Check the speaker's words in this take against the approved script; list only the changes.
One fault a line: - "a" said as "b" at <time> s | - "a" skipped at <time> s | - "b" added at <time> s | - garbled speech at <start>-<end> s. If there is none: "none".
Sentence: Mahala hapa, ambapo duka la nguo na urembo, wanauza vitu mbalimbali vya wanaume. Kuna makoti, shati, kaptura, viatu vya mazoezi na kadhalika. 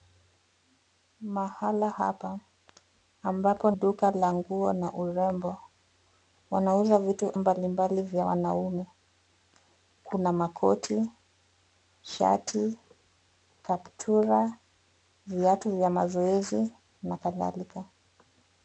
none